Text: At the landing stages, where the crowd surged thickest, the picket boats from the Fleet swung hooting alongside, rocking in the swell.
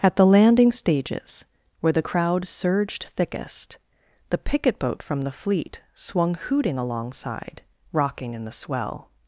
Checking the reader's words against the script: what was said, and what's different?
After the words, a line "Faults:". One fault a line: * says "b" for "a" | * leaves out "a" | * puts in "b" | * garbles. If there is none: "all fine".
At the landing stages, where the crowd surged thickest, the picket boat from the Fleet swung hooting alongside, rocking in the swell.
Faults:
* says "boat" for "boats"